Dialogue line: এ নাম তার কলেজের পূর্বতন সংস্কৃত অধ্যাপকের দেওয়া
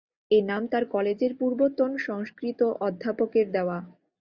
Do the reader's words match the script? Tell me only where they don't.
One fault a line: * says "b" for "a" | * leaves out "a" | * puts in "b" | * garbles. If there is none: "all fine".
all fine